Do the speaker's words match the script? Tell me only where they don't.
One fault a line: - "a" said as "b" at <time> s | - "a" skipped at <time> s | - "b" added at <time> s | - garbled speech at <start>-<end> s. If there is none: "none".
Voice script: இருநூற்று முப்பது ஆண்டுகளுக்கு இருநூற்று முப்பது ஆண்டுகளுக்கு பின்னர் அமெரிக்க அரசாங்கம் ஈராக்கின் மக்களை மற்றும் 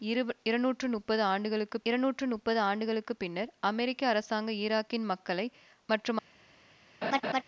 none